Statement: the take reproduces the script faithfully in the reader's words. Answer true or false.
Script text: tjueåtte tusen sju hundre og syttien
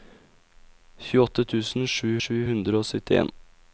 false